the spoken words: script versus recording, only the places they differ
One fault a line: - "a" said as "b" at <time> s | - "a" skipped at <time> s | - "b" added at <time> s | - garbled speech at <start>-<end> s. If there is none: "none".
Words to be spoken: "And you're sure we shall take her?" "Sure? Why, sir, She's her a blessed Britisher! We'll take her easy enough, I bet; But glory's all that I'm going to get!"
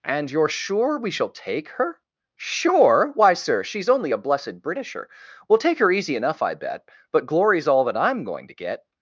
- "her" said as "only" at 3.9 s